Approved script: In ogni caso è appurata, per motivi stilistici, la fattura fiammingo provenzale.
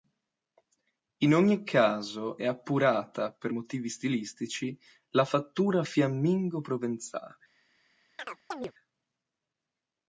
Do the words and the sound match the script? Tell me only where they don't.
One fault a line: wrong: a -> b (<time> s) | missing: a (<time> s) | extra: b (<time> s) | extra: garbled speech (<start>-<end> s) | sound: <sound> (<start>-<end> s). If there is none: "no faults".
sound: chirp (8.2-8.7 s)